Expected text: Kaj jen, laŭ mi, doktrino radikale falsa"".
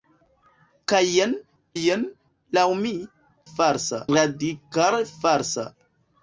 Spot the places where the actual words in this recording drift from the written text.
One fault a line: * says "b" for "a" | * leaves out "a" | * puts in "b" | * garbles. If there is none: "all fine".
* puts in "jen"
* says "falsa" for "doktrino"